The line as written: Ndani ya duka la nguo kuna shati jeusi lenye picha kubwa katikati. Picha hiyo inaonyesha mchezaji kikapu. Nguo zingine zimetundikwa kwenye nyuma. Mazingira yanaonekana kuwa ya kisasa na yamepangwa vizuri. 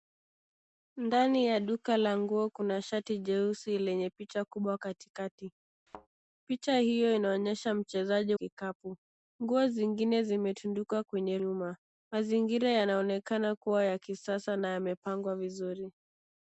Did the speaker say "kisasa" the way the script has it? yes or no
yes